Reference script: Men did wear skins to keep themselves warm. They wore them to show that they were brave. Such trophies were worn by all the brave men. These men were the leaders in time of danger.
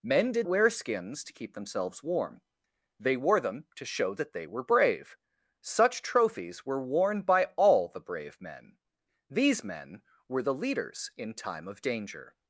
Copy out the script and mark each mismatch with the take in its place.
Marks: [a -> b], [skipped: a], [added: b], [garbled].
Men did wear skins to keep themselves warm. They wore them to show that they were brave. Such trophies were worn by all the brave men. These men were the leaders in time of danger.